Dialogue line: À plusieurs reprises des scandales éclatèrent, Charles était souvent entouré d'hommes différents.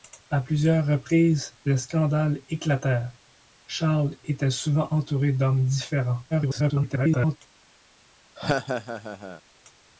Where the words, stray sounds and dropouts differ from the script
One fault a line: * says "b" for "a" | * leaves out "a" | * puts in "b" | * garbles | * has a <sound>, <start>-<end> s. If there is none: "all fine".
* garbles
* has a laugh, 8.4-9.4 s